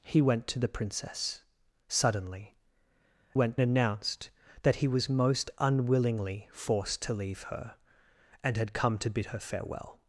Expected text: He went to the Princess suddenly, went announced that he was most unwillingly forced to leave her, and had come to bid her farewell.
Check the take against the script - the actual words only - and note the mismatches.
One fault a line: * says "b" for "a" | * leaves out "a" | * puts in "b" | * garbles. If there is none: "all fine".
all fine